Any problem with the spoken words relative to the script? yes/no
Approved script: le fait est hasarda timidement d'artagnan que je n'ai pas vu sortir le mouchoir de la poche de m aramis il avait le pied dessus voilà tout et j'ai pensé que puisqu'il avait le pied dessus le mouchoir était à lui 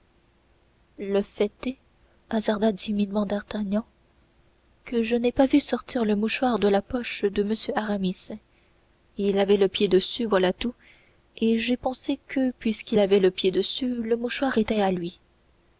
no